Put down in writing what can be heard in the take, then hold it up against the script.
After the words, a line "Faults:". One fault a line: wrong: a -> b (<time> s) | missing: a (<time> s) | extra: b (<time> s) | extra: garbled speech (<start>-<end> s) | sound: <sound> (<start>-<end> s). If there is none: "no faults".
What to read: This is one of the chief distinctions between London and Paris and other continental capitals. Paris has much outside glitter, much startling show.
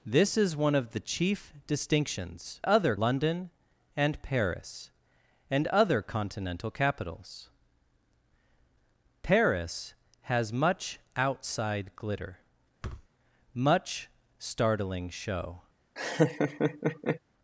This is one of the chief distinctions other London and Paris and other continental capitals. Paris has much outside glitter, much startling show.
Faults:
wrong: between -> other (2.6 s)
sound: thud (12.8-13.1 s)
sound: laugh (16.0-17.2 s)